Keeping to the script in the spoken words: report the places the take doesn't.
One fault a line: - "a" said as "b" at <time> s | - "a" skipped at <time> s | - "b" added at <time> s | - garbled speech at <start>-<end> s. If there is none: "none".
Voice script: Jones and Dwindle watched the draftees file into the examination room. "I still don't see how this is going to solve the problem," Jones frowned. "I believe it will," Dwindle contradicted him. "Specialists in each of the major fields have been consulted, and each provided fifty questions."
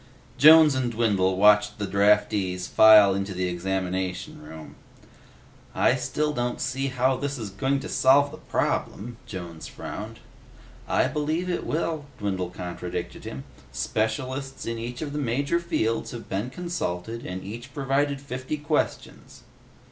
none